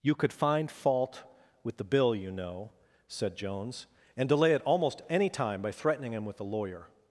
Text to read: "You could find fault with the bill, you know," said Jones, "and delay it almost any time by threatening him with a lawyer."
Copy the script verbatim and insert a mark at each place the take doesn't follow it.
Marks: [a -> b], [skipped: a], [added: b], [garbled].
"You could find fault with the bill, you know," said Jones, "and delay it almost any time by threatening him with a lawyer."